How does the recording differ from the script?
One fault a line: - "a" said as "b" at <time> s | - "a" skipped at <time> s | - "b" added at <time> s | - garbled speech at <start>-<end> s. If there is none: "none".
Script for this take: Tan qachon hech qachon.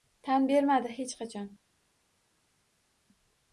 - "qachon" said as "bermadi" at 0.5 s